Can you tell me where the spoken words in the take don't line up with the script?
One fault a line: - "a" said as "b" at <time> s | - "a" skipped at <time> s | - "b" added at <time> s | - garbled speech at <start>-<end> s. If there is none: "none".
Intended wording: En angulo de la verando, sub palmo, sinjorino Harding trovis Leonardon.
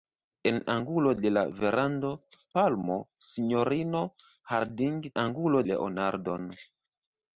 - "sub" skipped at 2.1 s
- "trovis" said as "angulo" at 5.2 s